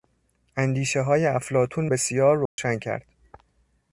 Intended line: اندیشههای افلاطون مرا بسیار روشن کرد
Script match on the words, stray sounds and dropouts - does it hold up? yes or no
no